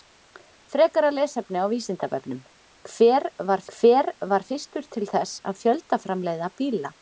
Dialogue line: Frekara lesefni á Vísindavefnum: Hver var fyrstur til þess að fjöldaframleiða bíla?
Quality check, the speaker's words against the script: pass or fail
fail